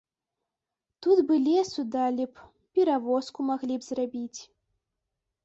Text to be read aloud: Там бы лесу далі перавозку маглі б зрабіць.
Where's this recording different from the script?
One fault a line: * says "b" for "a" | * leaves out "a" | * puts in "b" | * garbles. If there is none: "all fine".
* says "Тут" for "Там"
* puts in "б"